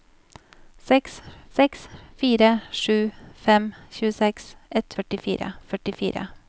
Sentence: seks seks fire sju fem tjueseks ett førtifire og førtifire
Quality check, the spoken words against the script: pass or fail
pass